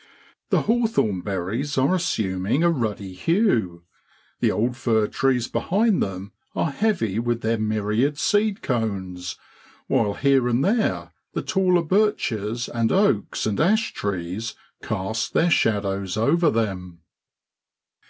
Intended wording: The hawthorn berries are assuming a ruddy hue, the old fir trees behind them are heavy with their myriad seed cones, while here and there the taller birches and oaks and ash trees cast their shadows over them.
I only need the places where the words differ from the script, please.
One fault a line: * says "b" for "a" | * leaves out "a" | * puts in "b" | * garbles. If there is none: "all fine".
all fine